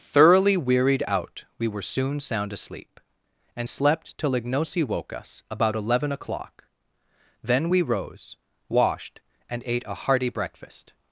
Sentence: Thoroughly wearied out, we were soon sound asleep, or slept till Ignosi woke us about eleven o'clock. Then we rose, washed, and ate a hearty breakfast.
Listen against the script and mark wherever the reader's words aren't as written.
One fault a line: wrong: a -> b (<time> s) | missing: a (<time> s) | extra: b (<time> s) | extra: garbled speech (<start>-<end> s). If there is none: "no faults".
wrong: or -> and (3.5 s)